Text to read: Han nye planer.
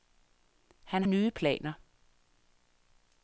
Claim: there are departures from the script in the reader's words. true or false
false